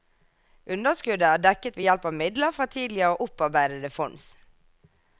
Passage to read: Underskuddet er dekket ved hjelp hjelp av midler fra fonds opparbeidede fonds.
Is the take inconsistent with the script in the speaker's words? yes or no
yes